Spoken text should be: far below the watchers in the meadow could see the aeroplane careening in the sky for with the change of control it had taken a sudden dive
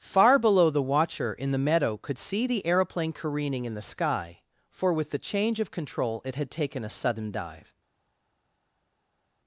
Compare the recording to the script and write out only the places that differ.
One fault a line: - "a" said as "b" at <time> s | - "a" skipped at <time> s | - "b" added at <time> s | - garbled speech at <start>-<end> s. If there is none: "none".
- "watchers" said as "watcher" at 0.8 s